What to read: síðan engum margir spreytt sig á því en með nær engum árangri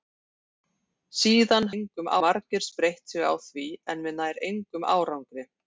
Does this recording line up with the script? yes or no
yes